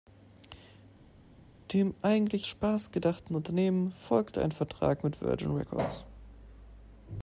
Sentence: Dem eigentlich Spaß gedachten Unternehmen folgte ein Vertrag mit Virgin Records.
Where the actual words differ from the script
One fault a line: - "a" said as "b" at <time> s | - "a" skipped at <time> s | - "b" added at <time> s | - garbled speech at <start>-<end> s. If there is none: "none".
none